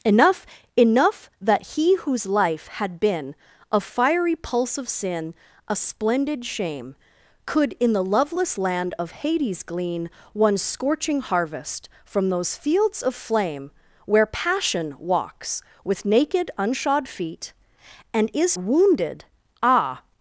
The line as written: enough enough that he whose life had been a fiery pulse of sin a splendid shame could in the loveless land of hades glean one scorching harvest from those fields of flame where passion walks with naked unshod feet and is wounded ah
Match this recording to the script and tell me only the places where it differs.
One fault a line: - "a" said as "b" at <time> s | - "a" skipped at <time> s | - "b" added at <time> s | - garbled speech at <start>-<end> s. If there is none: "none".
none